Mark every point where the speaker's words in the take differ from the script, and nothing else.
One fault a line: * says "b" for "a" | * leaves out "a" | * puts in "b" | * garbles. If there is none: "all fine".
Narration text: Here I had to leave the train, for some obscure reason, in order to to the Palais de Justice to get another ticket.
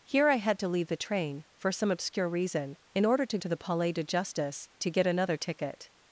all fine